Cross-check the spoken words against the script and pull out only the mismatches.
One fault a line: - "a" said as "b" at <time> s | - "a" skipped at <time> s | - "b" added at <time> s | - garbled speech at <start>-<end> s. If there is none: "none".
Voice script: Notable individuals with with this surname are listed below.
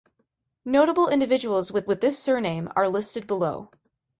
none